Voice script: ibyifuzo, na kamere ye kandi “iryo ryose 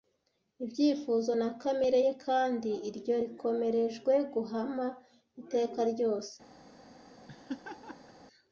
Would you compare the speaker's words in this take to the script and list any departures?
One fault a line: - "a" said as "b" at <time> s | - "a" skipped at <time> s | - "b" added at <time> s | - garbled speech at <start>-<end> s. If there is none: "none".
- "rikomerejwe guhama iteka" added at 3.2 s